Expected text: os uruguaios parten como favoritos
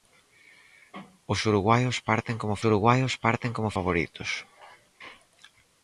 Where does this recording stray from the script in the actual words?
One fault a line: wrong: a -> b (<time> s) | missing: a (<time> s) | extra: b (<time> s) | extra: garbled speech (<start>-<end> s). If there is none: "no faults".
extra: uruguaios parten como (2.7 s)